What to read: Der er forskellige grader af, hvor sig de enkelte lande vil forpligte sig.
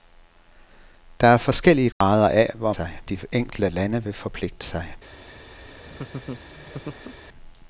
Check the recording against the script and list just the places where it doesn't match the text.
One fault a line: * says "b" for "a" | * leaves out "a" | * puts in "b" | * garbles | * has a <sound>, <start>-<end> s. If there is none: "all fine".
* has a dropout, 1.9-2.0 s
* has a laugh, 5.6-7.2 s